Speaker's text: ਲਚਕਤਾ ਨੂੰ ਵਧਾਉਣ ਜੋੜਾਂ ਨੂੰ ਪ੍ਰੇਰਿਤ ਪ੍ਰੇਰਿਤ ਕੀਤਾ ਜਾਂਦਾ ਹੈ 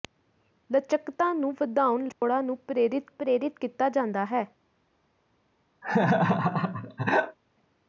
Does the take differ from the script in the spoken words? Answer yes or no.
no